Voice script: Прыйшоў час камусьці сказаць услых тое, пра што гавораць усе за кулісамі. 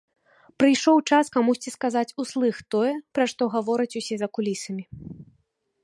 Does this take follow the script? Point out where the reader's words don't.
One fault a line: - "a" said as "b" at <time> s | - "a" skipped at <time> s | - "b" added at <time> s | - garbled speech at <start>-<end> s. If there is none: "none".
none